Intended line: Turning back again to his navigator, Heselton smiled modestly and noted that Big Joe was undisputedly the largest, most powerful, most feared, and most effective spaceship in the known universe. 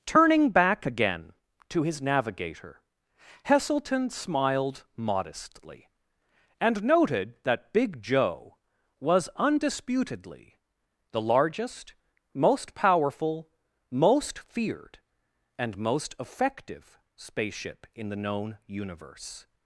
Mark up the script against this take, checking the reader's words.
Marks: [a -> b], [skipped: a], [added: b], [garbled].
Turning back again to his navigator, Heselton smiled modestly and noted that Big Joe was undisputedly the largest, most powerful, most feared, and most effective spaceship in the known universe.